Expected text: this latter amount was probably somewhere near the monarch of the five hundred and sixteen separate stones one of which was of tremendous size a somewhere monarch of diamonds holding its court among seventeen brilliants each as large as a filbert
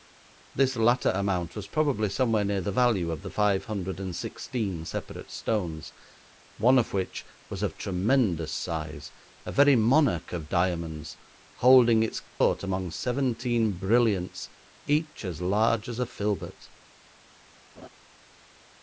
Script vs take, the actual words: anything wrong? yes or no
yes